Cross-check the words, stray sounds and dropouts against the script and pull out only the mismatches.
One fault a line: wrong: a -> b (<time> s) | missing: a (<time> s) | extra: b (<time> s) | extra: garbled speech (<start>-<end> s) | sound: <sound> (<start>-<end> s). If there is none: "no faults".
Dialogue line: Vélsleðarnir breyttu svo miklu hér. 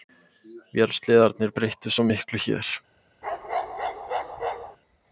sound: bark (3.2-4.8 s)